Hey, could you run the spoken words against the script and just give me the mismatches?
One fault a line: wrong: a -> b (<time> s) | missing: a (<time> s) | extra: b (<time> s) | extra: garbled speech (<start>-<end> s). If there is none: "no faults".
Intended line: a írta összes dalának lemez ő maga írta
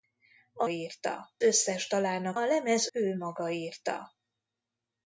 no faults